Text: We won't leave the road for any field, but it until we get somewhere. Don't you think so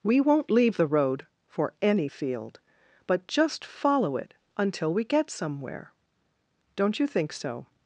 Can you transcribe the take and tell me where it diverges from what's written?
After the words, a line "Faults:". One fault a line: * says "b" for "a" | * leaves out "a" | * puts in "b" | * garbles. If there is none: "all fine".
We won't leave the road for any field, but just follow it until we get somewhere. Don't you think so
Faults:
* puts in "just follow"